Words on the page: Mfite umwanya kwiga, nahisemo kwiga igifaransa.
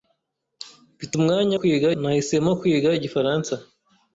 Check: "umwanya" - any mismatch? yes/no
no